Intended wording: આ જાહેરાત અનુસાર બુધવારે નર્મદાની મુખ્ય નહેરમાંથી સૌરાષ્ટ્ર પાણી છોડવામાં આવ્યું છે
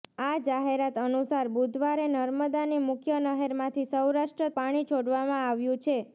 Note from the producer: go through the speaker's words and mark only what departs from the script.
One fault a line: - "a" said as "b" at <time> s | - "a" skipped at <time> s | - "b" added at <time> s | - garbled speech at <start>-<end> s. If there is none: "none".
none